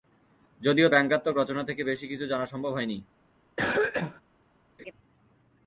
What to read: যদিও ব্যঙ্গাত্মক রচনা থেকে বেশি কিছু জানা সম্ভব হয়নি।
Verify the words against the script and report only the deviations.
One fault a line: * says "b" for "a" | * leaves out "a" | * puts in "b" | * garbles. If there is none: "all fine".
all fine